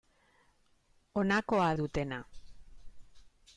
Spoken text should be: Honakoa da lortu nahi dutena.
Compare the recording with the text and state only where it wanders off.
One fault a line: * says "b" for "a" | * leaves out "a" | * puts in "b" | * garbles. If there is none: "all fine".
* leaves out "da lortu nahi"